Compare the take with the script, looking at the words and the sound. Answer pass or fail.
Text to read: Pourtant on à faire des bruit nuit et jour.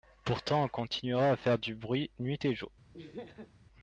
fail